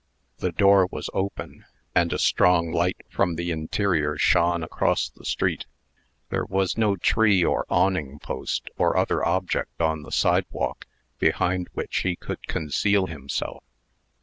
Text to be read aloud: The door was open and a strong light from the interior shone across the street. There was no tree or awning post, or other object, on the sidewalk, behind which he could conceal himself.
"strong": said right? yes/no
yes